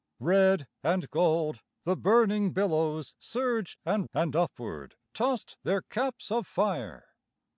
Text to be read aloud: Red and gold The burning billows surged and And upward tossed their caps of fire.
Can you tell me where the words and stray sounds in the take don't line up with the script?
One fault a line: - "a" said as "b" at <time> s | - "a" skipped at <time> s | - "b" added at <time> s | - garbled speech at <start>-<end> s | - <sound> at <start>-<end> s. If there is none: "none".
none